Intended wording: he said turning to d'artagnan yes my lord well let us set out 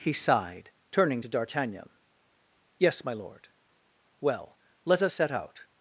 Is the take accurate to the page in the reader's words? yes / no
no